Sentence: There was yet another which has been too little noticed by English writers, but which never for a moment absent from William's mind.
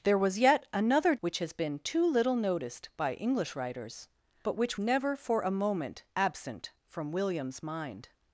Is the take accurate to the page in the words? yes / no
yes